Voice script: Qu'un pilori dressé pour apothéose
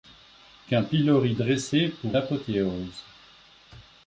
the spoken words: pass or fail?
pass